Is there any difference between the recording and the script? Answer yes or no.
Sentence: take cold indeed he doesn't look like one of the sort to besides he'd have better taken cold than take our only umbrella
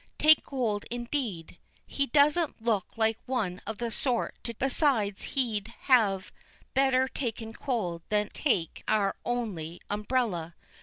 no